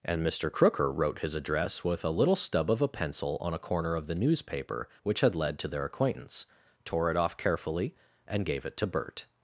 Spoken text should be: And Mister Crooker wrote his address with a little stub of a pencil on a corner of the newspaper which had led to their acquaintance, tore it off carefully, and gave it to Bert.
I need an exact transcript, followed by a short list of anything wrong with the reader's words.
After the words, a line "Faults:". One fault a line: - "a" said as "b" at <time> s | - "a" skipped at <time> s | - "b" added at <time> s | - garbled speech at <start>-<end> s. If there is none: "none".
And Mister Crooker wrote his address with a little stub of a pencil on a corner of the newspaper which had led to their acquaintance, tore it off carefully, and gave it to Bert.
Faults:
none